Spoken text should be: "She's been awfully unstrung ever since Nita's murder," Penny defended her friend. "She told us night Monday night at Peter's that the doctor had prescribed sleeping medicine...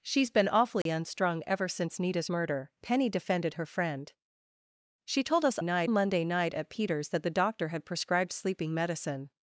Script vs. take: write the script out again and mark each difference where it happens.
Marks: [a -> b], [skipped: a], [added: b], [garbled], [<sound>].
"She's been awfully [dropout] unstrung ever since Nita's murder," Penny defended her friend. "She told us night Monday night at Peter's that the doctor had prescribed sleeping medicine...